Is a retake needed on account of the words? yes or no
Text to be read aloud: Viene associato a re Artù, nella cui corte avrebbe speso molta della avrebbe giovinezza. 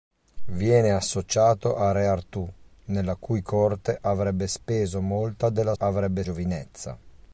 no